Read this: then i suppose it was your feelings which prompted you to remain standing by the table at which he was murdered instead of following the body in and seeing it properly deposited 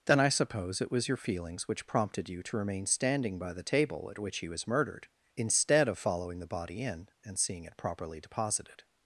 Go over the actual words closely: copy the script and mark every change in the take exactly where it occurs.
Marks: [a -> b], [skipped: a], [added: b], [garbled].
then i suppose it was your feelings which prompted you to remain standing by the table at which he was murdered instead of following the body in and seeing it properly deposited